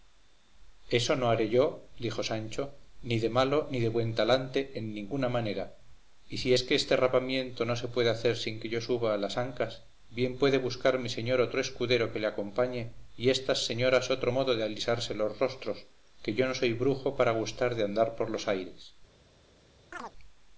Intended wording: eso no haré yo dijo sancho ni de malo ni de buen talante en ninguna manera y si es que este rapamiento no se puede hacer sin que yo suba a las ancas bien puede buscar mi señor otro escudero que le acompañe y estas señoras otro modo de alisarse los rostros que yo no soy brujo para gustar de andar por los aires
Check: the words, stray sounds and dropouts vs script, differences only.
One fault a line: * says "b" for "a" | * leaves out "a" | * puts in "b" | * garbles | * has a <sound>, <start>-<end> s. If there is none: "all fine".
* has a chirp, 19.9-20.1 s